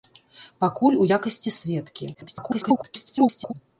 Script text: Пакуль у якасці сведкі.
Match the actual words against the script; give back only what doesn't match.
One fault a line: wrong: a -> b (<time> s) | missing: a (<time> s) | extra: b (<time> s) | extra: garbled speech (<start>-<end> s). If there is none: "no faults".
extra: garbled speech (2.1-3.5 s)